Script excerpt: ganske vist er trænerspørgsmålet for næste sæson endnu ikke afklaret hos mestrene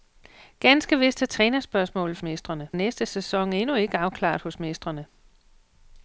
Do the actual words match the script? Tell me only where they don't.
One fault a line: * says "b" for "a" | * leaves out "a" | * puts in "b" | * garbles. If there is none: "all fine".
* says "mestrene" for "for"